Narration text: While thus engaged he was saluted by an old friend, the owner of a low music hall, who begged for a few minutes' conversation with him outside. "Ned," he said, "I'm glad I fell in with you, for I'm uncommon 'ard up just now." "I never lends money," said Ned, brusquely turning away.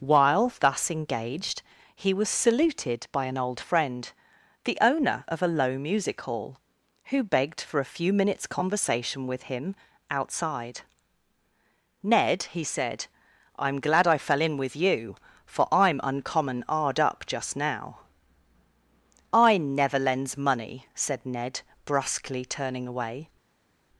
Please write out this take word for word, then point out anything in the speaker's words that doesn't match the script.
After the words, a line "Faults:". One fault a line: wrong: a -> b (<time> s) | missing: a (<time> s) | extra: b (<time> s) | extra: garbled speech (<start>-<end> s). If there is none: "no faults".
While thus engaged he was saluted by an old friend, the owner of a low music hall, who begged for a few minutes' conversation with him outside. "Ned," he said, "I'm glad I fell in with you, for I'm uncommon 'ard up just now." "I never lends money," said Ned, brusquely turning away.
Faults:
no faults